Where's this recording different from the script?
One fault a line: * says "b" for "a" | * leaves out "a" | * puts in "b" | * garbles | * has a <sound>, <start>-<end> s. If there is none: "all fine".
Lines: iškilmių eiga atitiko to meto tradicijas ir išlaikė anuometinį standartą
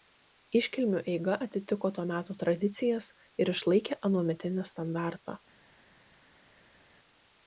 all fine